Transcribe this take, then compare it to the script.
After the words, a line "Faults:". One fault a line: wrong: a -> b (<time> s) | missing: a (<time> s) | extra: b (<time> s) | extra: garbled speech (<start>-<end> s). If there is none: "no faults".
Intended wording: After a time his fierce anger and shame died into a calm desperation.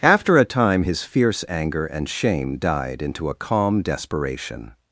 After a time his fierce anger and shame died into a calm desperation.
Faults:
no faults